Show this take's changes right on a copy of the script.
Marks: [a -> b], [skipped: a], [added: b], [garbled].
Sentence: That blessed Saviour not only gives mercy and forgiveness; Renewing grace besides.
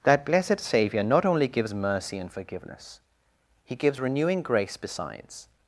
That blessed Saviour not only gives mercy and forgiveness; [added: He gives] Renewing grace besides.